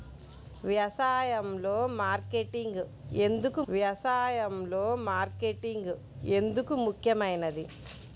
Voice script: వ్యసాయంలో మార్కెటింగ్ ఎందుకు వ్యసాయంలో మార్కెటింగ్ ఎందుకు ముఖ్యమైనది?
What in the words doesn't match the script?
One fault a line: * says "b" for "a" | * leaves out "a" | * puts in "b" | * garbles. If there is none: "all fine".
all fine